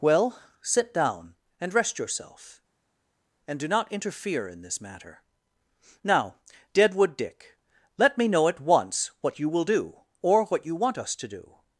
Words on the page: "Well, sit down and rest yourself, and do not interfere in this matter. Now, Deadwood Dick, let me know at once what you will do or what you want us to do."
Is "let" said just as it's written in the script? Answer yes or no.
yes